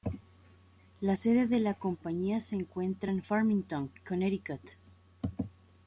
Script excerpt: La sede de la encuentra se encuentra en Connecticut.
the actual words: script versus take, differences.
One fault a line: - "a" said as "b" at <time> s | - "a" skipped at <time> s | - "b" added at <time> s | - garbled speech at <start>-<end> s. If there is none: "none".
- "encuentra" said as "compañía" at 1.7 s
- "Farmington" added at 3.2 s